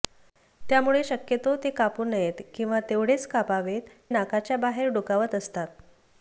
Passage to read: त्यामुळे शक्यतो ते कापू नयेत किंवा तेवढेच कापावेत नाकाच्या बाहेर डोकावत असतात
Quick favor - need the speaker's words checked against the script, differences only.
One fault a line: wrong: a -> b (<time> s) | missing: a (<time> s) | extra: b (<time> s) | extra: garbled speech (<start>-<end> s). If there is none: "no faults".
no faults